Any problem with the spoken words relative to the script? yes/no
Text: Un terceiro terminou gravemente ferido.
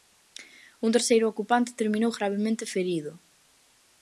yes